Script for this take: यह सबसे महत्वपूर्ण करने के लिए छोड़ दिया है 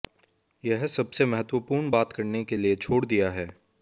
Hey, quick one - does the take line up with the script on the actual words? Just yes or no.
no